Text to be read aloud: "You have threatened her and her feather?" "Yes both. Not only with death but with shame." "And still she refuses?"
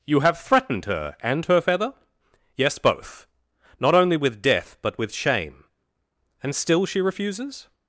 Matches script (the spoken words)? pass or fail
pass